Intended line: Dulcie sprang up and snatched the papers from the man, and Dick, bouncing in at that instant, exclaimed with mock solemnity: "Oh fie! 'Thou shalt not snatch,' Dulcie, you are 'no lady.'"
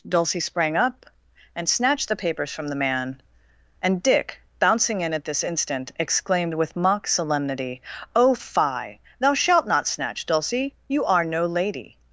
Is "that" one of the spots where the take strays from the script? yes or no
yes